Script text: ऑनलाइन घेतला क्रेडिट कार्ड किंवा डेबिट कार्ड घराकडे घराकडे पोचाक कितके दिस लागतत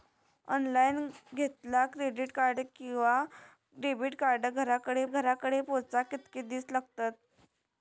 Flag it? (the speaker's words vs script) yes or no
no